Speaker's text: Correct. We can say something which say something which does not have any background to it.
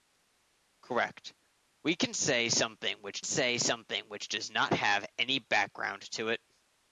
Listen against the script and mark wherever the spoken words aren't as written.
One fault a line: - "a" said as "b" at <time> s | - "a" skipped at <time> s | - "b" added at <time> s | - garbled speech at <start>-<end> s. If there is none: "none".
none